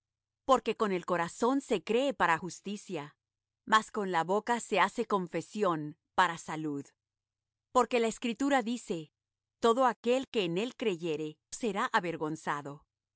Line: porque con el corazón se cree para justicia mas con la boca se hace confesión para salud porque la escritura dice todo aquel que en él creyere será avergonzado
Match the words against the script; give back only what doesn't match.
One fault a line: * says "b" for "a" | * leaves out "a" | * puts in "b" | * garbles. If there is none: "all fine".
all fine